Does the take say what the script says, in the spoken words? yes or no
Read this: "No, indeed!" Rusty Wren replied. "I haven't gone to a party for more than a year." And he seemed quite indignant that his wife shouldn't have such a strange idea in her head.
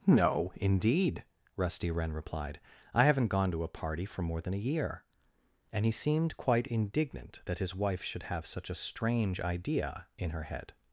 no